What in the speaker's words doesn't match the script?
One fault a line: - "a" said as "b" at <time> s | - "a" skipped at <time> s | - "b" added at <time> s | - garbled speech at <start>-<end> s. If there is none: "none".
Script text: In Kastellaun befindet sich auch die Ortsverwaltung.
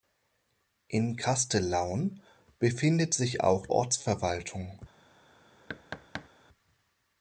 - "die" skipped at 3.7 s